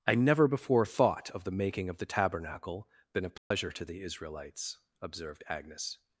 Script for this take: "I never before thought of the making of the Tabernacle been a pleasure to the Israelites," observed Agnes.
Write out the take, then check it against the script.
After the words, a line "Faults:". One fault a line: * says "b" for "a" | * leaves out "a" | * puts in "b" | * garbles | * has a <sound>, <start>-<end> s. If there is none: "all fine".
"I never before thought of the making of the Tabernacle been a pleasure to the Israelites," observed Agnes.
Faults:
* has a dropout, 3.4-3.5 s